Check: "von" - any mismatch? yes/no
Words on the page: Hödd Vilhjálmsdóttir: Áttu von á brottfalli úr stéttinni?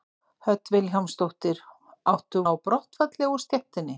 yes